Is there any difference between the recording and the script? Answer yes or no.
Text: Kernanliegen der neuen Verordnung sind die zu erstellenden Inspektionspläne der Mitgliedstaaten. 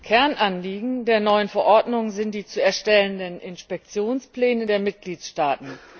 no